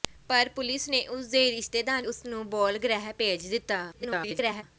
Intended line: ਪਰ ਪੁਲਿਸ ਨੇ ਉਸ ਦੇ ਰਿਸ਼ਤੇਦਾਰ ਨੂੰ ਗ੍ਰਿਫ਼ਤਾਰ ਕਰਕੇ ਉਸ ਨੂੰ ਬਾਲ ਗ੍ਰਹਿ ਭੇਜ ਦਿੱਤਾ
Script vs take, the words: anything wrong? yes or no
yes